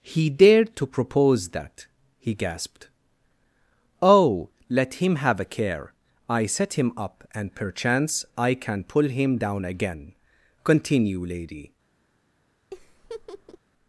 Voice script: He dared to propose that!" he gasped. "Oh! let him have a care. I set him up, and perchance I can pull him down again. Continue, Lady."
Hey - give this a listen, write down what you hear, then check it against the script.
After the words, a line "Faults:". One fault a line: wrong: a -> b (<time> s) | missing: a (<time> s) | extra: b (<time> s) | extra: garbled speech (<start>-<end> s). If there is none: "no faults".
He dared to propose that!" he gasped. "Oh! let him have a care. I set him up, and perchance I can pull him down again. Continue, Lady."
Faults:
no faults